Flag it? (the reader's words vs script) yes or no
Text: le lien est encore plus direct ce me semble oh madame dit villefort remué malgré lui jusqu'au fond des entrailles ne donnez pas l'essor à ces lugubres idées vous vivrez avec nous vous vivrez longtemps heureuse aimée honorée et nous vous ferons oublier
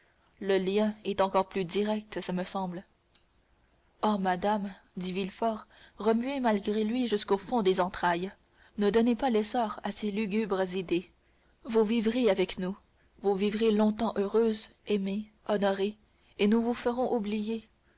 no